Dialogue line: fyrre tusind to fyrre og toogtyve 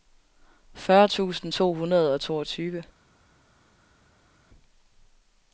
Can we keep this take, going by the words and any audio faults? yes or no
no